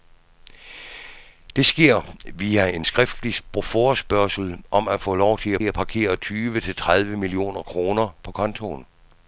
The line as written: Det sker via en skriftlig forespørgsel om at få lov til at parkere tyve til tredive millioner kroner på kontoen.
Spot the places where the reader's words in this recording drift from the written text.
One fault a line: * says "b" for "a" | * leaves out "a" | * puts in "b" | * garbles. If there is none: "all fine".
* puts in "at"